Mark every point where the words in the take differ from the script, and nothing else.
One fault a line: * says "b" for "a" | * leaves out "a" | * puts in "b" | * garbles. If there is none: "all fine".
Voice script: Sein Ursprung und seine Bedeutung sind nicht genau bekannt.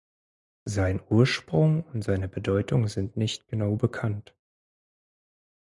all fine